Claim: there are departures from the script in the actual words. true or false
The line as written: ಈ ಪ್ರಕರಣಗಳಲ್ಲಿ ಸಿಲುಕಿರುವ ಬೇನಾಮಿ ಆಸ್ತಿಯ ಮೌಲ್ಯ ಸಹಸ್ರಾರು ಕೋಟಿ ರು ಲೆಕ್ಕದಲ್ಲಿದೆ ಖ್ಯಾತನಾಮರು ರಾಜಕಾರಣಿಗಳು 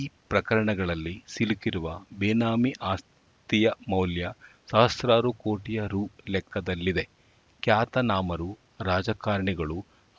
false